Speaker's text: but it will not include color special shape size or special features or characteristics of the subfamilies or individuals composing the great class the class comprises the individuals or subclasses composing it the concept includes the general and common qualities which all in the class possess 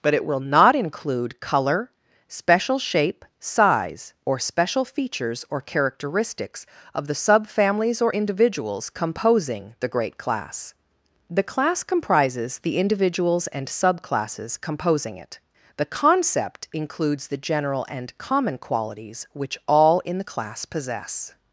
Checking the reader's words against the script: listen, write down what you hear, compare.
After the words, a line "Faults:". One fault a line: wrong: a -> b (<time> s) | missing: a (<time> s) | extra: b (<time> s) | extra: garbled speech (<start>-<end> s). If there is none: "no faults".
but it will not include color special shape size or special features or characteristics of the subfamilies or individuals composing the great class the class comprises the individuals and subclasses composing it the concept includes the general and common qualities which all in the class possess
Faults:
wrong: or -> and (13.5 s)